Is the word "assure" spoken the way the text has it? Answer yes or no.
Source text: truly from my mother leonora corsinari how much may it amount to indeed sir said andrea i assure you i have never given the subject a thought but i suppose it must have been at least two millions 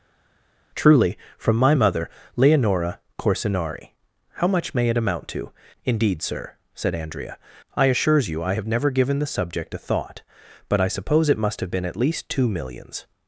no